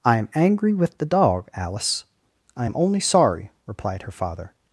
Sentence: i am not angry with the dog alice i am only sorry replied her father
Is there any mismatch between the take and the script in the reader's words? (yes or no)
yes